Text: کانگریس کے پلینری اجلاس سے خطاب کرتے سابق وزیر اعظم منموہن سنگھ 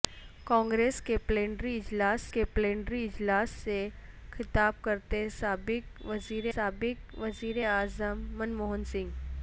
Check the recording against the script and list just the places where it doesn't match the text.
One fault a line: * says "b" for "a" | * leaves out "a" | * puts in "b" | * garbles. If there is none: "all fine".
* puts in "کے پلینری اجلاس"
* puts in "سابق وزیر"